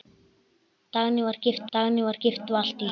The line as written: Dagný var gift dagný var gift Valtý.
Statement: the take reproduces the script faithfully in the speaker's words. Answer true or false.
true